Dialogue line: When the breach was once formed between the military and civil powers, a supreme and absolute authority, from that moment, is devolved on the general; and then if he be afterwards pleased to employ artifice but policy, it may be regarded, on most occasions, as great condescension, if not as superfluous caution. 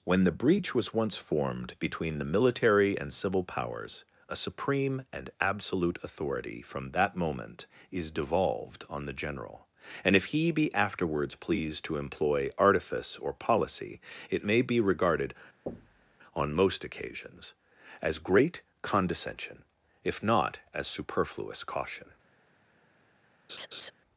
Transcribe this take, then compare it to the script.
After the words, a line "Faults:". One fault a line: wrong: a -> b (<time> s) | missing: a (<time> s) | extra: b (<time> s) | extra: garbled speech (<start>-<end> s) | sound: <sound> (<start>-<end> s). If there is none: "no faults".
When the breach was once formed between the military and civil powers, a supreme and absolute authority, from that moment, is devolved on the general; and if he be afterwards pleased to employ artifice or policy, it may be regarded, on most occasions, as great condescension, if not as superfluous caution.
Faults:
missing: then (10.2 s)
wrong: but -> or (13.2 s)
sound: thud (15.7-16.2 s)
sound: laugh (23.5-23.9 s)